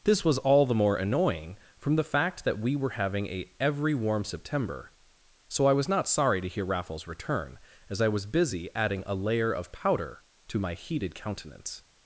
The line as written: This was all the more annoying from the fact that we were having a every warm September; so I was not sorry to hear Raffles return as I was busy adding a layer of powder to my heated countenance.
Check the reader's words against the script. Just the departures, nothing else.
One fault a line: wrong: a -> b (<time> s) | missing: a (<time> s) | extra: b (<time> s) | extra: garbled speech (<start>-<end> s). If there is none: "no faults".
no faults